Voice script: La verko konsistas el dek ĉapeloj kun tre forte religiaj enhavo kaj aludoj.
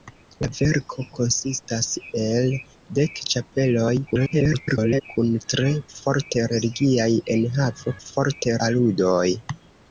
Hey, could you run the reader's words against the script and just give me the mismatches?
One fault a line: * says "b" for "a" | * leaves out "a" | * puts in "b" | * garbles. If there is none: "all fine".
* garbles
* says "forte" for "kaj"